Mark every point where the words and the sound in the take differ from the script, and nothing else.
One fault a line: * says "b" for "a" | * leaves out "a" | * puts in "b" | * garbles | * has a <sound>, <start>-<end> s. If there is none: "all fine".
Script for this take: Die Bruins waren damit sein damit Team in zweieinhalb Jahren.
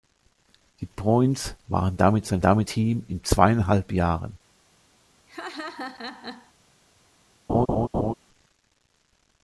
* has a laugh, 5.3-6.5 s
* has a laugh, 7.5-8.1 s